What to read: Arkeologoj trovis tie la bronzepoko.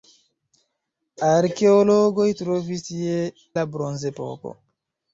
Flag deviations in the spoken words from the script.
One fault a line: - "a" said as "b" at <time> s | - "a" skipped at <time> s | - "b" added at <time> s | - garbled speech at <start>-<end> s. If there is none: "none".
none